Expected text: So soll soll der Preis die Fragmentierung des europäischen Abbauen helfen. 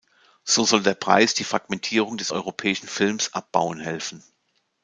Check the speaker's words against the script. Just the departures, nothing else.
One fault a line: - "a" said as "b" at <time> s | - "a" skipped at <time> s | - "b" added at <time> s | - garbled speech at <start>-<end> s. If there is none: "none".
- "soll" skipped at 0.8 s
- "Films" added at 2.9 s